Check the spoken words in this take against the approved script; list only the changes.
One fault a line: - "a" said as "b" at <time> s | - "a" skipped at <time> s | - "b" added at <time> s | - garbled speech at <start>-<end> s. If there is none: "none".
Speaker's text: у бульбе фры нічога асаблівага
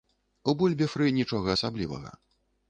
none